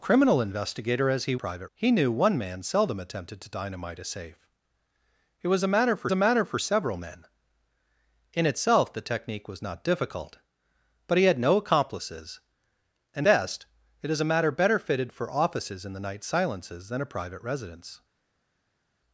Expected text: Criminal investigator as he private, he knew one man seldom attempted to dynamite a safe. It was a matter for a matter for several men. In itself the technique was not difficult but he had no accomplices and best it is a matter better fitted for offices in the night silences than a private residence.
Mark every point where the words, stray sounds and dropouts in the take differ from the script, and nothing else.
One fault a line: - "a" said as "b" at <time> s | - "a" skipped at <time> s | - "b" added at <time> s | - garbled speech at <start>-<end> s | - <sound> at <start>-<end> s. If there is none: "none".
none